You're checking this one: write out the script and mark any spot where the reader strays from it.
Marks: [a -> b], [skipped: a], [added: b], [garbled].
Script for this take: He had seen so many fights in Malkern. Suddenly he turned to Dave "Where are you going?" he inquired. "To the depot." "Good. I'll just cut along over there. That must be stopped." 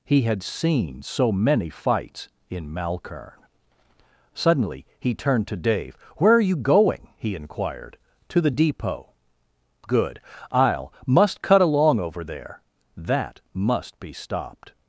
He had seen so many fights in Malkern. Suddenly he turned to Dave "Where are you going?" he inquired. "To the depot." "Good. I'll [just -> must] cut along over there. That must be stopped."